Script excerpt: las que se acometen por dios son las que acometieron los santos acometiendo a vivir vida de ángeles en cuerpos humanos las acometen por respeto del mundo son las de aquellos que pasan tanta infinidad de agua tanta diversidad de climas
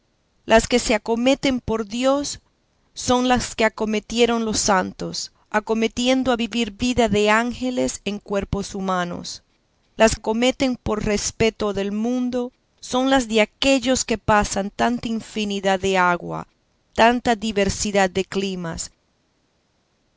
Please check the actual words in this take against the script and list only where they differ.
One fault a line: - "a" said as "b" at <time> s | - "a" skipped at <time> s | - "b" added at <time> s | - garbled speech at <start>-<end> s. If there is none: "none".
none